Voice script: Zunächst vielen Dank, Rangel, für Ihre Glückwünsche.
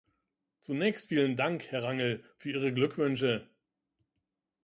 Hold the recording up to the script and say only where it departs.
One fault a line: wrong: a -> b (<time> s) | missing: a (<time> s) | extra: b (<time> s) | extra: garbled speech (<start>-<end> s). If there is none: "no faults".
extra: Herr (1.7 s)